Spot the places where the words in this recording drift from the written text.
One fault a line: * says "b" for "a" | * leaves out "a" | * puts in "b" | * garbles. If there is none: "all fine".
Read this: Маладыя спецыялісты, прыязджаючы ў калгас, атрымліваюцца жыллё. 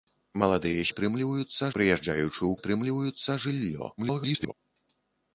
* says "атрымліваюцца" for "спецыялісты"
* leaves out "калгас"
* garbles